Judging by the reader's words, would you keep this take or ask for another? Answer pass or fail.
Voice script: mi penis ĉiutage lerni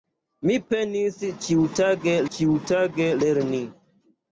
fail